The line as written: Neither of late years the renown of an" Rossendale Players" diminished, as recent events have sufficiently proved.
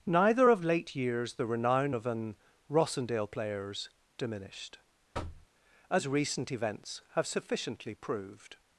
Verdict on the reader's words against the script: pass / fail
pass